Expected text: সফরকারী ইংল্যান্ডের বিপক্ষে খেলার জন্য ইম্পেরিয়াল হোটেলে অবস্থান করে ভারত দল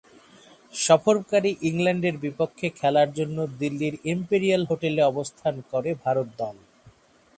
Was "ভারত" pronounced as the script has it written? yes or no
yes